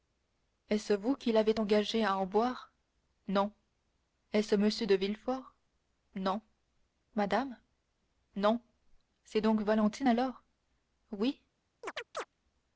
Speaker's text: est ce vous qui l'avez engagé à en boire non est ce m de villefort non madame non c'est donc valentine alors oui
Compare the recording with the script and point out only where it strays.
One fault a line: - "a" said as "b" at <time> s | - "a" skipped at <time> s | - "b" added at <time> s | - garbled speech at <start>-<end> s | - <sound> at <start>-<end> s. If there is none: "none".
- chirp at 11.8-12.3 s